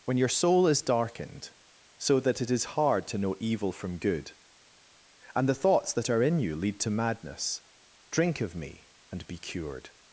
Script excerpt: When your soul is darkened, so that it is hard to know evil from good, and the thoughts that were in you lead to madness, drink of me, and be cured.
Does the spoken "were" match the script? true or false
false